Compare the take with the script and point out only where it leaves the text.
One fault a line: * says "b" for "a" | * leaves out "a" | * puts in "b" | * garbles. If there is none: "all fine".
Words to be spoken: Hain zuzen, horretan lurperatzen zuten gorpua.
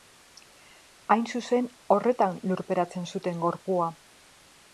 all fine